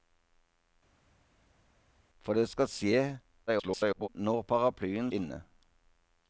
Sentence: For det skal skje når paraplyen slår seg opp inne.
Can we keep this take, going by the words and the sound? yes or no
no